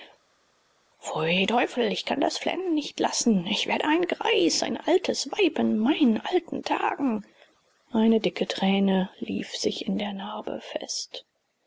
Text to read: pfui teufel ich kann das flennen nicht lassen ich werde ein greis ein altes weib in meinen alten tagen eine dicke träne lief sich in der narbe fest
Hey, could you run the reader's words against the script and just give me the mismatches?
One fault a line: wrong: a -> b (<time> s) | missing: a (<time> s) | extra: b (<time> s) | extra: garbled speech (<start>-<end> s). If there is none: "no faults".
no faults